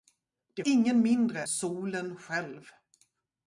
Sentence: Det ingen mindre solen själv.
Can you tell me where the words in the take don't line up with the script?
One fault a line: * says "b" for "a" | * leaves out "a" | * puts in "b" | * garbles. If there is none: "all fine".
all fine